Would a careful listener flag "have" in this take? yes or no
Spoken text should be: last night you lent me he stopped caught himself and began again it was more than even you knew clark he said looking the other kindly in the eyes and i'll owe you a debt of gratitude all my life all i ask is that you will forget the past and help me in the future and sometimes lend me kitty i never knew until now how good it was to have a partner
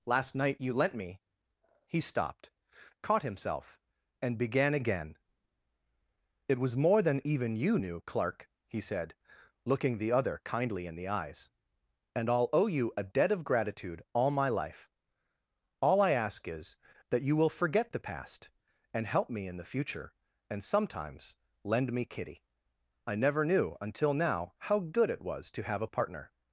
no